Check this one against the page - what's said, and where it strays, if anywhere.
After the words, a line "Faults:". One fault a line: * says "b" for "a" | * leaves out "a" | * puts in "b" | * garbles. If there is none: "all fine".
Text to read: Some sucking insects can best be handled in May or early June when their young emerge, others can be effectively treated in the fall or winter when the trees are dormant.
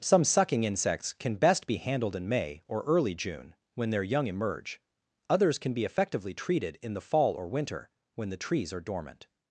Some sucking insects can best be handled in May or early June when their young emerge, others can be effectively treated in the fall or winter when the trees are dormant.
Faults:
all fine